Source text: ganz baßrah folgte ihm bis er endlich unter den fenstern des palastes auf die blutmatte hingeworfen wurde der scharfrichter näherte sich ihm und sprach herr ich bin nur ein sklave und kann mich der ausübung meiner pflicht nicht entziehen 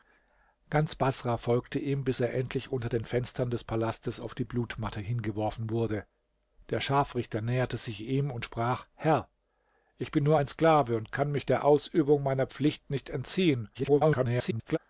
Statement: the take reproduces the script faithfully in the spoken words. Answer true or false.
false